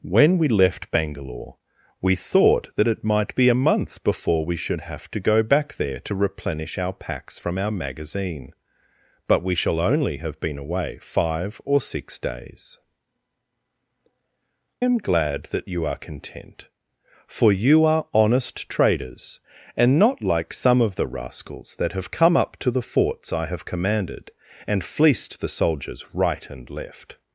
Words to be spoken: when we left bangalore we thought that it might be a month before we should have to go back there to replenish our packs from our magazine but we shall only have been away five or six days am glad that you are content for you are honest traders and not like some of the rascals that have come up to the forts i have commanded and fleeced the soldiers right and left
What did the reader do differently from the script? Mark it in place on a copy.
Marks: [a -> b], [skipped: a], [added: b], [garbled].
when we left bangalore we thought that it might be a month before we should have to go back there to replenish our packs from our magazine but we shall only have been away five or six days am glad that you are content for you are honest traders and not like some of the rascals that have come up to the forts i have commanded and fleeced the soldiers right and left